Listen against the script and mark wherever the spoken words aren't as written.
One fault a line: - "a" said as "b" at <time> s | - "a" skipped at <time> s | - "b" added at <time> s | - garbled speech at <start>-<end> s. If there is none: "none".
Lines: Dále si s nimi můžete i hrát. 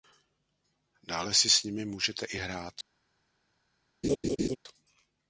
none